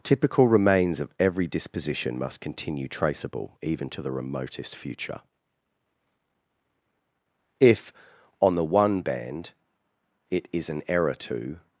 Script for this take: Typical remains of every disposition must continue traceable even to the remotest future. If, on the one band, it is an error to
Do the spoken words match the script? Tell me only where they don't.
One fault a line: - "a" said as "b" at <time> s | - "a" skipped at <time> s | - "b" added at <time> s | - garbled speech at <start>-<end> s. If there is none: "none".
none